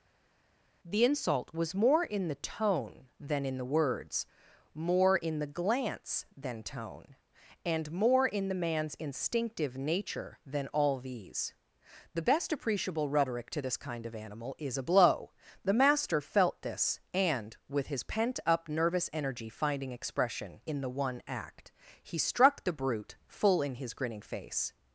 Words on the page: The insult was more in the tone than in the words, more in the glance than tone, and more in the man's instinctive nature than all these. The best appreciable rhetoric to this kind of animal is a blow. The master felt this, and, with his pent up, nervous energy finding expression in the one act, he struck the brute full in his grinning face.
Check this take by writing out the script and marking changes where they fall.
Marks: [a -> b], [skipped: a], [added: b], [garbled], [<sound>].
The insult was more in the tone than in the words, more in the glance than tone, and more in the man's instinctive nature than all these. The best appreciable rhetoric to this kind of animal is a blow. The master felt this, and, with his pent up, nervous energy finding expression in the one act, he struck the brute full in his grinning face.